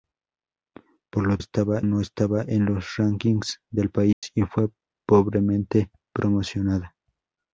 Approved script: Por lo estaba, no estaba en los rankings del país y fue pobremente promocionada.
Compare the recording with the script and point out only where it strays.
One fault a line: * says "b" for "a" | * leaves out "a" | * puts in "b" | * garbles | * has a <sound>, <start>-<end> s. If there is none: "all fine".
* has a dropout, 4.1-4.2 s